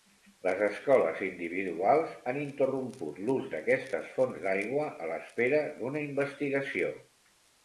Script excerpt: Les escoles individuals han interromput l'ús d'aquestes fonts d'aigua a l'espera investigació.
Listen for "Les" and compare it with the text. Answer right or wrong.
right